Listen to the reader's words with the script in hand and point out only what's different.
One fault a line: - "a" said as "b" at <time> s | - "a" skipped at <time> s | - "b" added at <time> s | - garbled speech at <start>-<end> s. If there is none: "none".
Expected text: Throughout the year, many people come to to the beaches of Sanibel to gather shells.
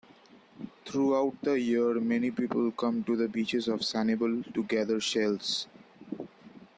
- "to" skipped at 3.1 s